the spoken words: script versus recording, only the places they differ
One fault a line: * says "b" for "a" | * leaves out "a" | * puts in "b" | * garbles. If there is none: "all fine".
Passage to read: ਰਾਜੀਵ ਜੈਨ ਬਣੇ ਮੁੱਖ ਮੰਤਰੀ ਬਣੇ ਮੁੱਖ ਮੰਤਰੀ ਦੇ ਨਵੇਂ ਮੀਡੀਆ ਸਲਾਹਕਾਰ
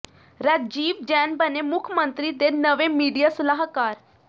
* leaves out "ਬਣੇ ਮੁੱਖ ਮੰਤਰੀ"